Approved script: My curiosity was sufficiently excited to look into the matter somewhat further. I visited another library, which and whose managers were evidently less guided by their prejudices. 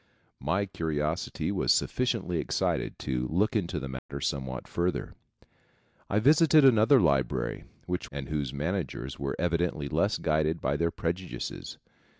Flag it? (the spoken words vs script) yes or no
no